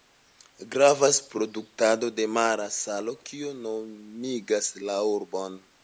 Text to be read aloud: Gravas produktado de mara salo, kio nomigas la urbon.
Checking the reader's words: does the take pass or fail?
pass